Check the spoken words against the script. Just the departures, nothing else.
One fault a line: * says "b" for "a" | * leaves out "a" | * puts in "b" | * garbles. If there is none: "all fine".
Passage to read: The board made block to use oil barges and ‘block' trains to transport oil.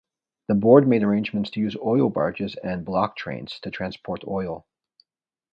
* says "arrangements" for "block"